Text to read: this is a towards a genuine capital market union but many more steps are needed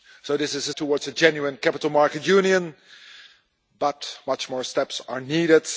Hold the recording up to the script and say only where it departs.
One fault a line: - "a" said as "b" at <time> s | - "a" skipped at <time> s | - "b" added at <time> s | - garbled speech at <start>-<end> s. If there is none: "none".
none